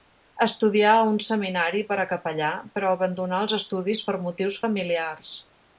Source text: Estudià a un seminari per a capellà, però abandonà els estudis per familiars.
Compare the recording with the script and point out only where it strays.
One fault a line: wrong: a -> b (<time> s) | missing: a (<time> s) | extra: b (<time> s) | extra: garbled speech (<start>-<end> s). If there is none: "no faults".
extra: motius (4.3 s)